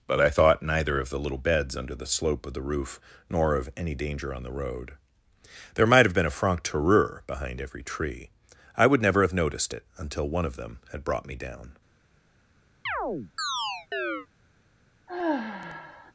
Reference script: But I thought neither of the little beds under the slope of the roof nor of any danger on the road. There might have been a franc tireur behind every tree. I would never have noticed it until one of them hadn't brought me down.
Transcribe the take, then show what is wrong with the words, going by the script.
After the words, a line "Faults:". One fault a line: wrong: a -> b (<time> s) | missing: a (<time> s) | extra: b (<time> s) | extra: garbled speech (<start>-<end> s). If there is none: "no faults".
But I thought neither of the little beds under the slope of the roof nor of any danger on the road. There might have been a franc tireur behind every tree. I would never have noticed it until one of them had brought me down.
Faults:
wrong: hadn't -> had (10.9 s)